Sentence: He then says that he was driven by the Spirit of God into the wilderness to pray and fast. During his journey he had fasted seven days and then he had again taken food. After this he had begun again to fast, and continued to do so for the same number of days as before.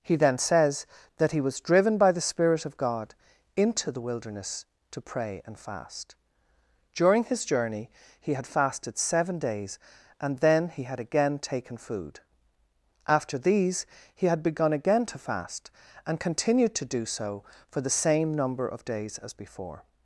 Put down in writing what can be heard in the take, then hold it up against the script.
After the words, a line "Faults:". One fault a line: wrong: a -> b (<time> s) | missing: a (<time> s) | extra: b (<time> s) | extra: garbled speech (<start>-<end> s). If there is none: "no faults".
He then says that he was driven by the Spirit of God into the wilderness to pray and fast. During his journey he had fasted seven days and then he had again taken food. After these he had begun again to fast, and continued to do so for the same number of days as before.
Faults:
wrong: this -> these (13.4 s)